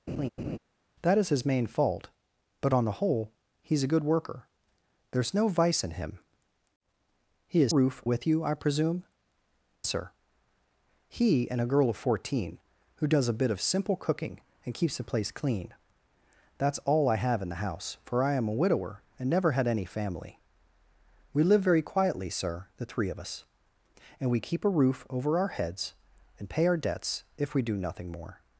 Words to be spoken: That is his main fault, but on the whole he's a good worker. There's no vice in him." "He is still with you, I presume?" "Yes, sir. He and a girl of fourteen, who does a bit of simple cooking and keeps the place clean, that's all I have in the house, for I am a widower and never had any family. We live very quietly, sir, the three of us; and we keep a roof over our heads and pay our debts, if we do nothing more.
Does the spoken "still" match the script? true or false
false